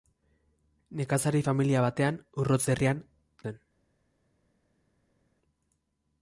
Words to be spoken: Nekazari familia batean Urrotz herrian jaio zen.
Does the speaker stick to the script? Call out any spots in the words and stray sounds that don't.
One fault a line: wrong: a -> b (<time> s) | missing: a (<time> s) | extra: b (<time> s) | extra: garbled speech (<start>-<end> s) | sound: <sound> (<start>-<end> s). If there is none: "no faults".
missing: jaio (3.0 s)